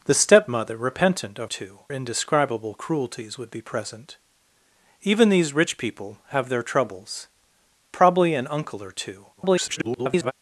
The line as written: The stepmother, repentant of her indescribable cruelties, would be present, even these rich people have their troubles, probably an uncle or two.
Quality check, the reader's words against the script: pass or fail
fail